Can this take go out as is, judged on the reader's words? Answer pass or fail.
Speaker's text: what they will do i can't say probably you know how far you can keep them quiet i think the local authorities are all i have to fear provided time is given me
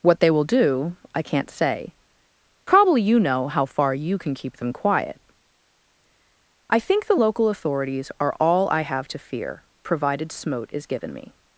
fail